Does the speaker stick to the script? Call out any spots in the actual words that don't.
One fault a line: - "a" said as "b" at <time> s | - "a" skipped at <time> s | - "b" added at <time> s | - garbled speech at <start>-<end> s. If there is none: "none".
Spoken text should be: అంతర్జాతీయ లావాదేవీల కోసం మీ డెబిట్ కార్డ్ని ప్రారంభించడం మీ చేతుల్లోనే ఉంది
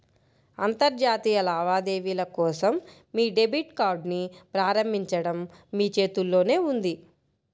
none